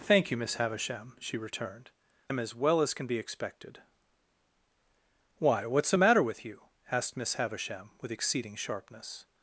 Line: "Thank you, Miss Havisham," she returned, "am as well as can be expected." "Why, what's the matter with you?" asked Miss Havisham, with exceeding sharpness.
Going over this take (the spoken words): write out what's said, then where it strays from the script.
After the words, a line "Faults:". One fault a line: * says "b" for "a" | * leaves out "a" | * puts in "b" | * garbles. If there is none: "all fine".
"Thank you, Miss Havisham," she returned, "am as well as can be expected." "Why, what's the matter with you?" asked Miss Havisham, with exceeding sharpness.
Faults:
all fine